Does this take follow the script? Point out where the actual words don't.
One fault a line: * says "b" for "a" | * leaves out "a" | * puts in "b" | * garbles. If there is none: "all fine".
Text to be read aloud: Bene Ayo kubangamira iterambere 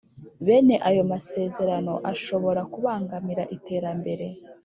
* puts in "masezerano ashobora"